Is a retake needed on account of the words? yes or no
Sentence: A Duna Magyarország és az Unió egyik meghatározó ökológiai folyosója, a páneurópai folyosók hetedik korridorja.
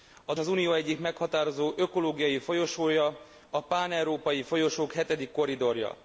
yes